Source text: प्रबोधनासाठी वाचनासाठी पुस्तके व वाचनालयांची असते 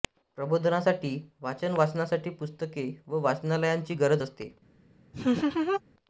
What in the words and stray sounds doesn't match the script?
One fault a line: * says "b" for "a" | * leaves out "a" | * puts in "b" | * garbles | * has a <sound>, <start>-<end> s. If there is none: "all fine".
* puts in "वाचन"
* puts in "गरज"
* has a laugh, 5.1-5.8 s